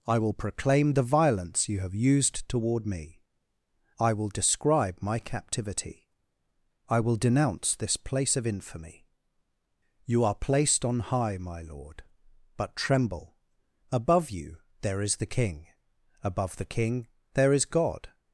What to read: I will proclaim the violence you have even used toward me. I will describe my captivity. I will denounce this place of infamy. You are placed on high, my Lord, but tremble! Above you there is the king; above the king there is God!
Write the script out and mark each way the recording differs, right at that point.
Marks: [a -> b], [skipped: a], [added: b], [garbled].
I will proclaim the violence you have [skipped: even] used toward me. I will describe my captivity. I will denounce this place of infamy. You are placed on high, my Lord, but tremble! Above you there is the king; above the king there is God!